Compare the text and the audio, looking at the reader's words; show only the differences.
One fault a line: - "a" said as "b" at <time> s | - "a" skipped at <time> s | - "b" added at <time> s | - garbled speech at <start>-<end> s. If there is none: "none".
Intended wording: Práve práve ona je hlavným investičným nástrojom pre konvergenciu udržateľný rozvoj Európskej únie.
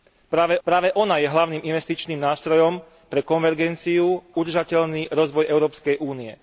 none